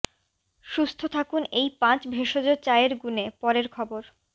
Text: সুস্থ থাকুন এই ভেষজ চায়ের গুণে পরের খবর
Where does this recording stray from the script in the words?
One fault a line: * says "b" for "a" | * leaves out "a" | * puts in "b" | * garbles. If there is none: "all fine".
* puts in "পাঁচ"